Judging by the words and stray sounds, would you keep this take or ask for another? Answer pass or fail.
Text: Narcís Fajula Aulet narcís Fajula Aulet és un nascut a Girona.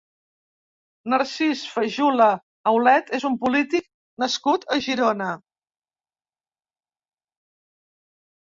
fail